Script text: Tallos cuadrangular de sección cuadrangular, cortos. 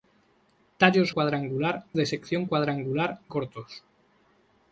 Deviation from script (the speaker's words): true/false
false